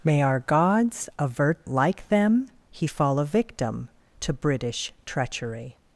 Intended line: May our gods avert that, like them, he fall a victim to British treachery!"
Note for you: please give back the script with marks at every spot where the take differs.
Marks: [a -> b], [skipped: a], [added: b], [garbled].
May our gods avert [skipped: that,] like them, he fall a victim to British treachery!"